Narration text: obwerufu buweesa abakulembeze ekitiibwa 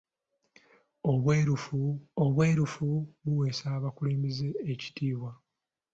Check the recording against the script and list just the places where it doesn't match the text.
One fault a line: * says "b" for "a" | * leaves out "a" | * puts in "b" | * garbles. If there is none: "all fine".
* puts in "obwerufu"